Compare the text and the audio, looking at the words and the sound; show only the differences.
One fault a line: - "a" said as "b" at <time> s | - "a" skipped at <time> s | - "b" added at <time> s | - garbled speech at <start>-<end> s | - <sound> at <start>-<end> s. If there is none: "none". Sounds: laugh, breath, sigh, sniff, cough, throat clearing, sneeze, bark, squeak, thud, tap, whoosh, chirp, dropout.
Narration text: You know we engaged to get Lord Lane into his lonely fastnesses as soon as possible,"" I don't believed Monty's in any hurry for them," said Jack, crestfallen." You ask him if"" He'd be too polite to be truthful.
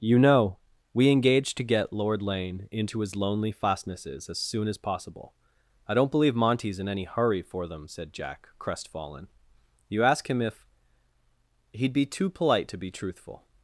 - "believed" said as "believe" at 6.1 s